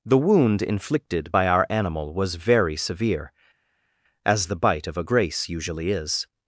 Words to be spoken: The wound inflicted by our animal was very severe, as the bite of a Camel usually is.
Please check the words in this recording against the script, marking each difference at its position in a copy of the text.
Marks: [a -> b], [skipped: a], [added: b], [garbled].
The wound inflicted by our animal was very severe, as the bite of a [Camel -> Grace] usually is.